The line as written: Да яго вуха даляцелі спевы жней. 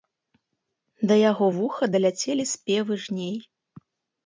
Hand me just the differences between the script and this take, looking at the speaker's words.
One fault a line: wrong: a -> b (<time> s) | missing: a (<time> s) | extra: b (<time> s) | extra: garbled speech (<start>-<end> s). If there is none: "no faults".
no faults